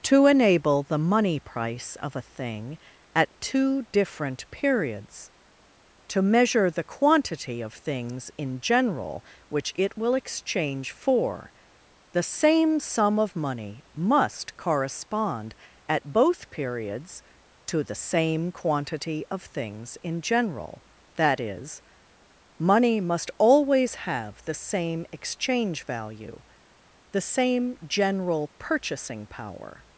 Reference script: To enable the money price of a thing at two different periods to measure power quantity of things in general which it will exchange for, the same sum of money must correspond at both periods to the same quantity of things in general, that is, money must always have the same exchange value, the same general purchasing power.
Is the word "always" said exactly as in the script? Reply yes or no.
yes